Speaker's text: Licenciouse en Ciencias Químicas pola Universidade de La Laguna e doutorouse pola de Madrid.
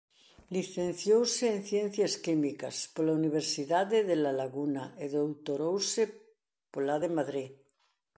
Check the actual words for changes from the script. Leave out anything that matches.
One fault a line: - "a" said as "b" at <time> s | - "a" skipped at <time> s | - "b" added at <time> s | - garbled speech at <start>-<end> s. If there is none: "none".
none